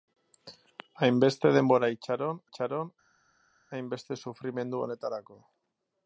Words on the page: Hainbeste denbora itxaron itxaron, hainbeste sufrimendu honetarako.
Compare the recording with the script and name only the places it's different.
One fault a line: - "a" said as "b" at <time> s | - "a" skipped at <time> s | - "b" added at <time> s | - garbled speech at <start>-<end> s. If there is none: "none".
none